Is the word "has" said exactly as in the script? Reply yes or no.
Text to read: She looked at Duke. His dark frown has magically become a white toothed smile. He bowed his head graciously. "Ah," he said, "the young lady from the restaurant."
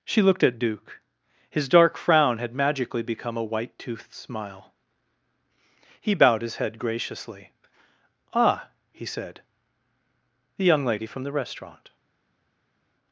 no